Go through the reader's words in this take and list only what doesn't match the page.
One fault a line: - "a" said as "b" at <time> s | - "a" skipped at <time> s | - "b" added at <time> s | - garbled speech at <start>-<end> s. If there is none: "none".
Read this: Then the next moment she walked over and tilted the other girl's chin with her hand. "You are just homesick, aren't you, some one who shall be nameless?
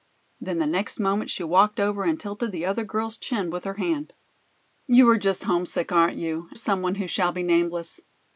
none